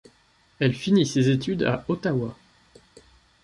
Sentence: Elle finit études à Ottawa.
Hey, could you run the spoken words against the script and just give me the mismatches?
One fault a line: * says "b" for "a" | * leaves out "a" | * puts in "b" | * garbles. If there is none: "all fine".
* puts in "ses"